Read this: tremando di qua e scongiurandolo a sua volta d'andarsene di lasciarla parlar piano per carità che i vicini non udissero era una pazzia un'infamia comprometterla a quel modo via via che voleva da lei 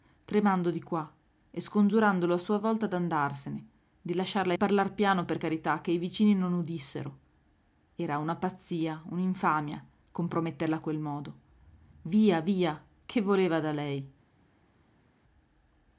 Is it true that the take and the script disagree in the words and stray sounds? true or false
false